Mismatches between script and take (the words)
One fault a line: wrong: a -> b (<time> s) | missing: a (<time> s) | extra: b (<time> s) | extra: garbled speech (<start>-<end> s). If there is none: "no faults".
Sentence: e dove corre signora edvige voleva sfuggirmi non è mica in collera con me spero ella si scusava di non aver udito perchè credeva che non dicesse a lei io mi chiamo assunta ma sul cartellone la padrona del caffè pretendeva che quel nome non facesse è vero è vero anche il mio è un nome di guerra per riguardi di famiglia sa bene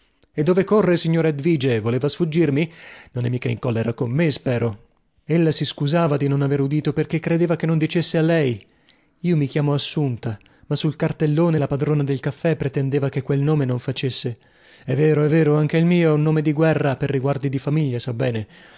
no faults